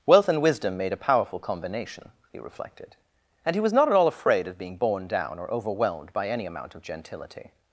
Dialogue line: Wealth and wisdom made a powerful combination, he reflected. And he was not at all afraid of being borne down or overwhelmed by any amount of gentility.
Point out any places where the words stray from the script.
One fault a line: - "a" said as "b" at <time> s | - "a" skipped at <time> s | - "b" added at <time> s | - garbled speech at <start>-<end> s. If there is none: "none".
none